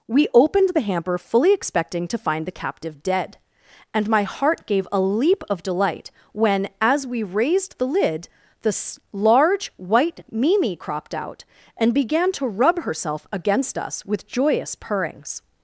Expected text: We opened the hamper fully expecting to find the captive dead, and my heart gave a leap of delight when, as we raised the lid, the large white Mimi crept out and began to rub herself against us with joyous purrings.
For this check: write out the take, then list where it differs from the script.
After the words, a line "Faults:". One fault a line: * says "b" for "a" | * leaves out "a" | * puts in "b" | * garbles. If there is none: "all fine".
We opened the hamper fully expecting to find the captive dead, and my heart gave a leap of delight when, as we raised the lid, the large white Mimi cropped out and began to rub herself against us with joyous purrings.
Faults:
* says "cropped" for "crept"